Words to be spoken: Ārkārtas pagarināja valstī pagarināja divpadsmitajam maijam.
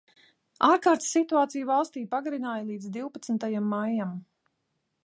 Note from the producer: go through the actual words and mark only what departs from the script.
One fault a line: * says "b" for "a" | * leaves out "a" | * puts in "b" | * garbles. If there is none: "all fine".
* says "situāciju" for "pagarināja"
* puts in "līdz"